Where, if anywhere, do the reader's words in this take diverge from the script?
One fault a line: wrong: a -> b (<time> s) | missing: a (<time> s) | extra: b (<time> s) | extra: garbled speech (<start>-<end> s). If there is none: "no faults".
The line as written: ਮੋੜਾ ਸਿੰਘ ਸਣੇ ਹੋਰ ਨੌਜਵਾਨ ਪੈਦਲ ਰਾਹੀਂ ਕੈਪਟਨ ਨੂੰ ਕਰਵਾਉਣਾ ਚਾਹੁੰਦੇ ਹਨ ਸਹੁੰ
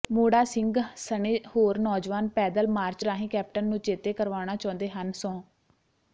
extra: ਮਾਰਚ (2.7 s)
extra: ਚੇਤੇ (3.8 s)